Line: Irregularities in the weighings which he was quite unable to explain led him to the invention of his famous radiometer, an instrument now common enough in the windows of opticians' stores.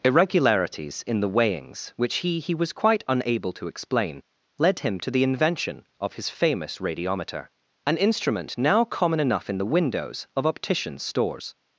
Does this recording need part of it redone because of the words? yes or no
yes